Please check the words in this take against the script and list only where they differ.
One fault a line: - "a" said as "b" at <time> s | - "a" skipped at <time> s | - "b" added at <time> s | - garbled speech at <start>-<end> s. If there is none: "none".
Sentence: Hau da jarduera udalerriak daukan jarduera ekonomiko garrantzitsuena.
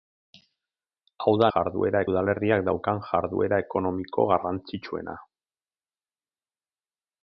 none